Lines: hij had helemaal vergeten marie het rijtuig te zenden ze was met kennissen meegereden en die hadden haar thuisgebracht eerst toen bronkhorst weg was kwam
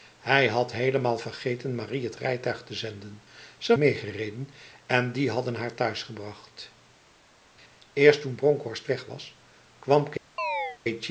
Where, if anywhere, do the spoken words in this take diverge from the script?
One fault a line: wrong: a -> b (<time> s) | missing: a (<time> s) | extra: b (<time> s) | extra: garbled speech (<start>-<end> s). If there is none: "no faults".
missing: was met kennissen (3.8 s)